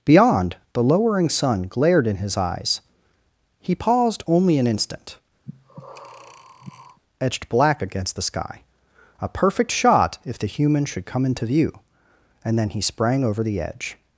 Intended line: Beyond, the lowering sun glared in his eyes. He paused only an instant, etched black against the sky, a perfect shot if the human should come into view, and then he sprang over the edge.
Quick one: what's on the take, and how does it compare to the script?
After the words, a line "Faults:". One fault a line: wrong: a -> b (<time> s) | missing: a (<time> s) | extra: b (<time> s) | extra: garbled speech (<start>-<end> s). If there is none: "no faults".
Beyond, the lowering sun glared in his eyes. He paused only an instant, etched black against the sky, a perfect shot if the human should come into view, and then he sprang over the edge.
Faults:
no faults